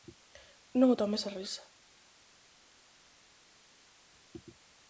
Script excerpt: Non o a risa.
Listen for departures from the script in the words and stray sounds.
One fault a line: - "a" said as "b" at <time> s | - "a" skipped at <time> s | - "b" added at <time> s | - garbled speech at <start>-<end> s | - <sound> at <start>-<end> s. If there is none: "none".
- "tomes" added at 1.0 s